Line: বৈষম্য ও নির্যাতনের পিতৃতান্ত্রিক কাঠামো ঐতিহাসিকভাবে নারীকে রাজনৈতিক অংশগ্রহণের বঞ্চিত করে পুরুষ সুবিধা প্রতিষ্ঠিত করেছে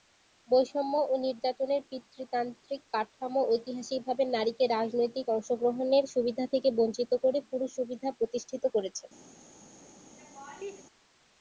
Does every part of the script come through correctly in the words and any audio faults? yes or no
no